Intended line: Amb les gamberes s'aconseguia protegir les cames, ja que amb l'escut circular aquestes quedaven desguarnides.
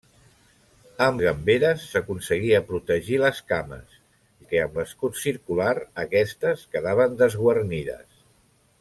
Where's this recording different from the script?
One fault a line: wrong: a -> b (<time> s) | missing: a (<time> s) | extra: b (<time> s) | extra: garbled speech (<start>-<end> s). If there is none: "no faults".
missing: les (1.2 s)
missing: ja (4.0 s)